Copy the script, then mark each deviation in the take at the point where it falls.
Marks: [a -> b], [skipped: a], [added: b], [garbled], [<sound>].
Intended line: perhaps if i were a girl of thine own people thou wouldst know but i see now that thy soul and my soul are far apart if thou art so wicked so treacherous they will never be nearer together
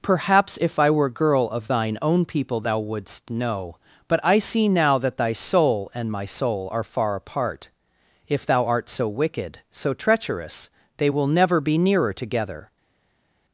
perhaps if i were [skipped: a] girl of thine own people thou wouldst know but i see now that thy soul and my soul are far apart if thou art so wicked so treacherous they will never be nearer together